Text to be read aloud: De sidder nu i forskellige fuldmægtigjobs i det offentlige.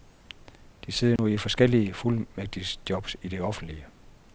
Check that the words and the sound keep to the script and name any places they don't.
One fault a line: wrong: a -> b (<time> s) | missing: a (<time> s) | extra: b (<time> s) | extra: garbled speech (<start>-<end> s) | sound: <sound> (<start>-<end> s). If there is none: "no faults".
sound: dropout (1.2-1.2 s)